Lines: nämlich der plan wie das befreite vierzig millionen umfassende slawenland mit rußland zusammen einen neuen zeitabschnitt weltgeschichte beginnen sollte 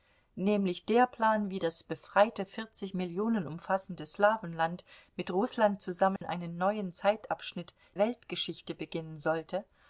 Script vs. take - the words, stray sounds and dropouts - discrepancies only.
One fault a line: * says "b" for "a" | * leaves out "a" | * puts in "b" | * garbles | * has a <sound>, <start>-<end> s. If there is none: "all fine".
* has a dropout, 6.2-6.2 s